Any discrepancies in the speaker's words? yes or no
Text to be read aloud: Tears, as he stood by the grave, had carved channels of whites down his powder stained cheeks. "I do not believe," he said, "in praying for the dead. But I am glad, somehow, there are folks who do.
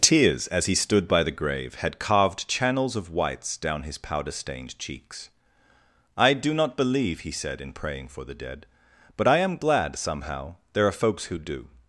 no